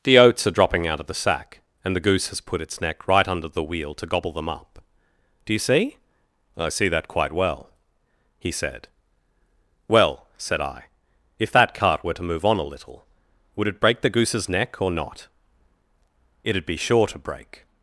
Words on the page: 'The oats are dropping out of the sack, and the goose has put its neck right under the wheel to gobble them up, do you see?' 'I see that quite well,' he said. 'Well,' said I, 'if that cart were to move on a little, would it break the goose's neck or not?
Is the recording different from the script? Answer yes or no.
yes